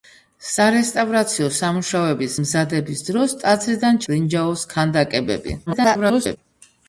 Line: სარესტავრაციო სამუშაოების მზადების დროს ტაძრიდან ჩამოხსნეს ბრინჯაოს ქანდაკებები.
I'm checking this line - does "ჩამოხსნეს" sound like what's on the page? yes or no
no